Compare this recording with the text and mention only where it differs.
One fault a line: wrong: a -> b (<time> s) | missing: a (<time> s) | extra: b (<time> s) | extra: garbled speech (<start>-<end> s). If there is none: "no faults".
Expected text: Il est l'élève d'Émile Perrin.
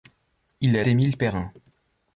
missing: l'élève (0.8 s)